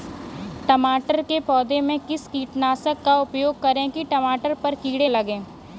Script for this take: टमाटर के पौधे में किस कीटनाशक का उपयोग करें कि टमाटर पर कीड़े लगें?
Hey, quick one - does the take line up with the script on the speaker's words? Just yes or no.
yes